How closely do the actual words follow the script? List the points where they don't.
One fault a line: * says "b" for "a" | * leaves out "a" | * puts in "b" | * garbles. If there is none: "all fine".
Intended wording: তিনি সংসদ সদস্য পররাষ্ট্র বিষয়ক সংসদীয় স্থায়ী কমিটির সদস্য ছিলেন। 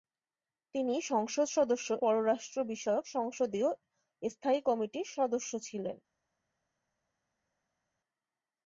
all fine